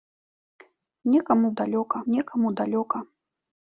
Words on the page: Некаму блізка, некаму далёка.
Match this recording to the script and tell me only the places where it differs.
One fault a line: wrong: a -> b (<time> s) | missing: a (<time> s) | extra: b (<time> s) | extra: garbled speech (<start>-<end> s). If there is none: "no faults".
wrong: блізка -> далёка (1.6 s)